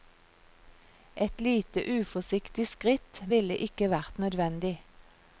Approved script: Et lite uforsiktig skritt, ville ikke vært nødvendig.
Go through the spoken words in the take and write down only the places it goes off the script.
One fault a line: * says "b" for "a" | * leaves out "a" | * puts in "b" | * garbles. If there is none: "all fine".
all fine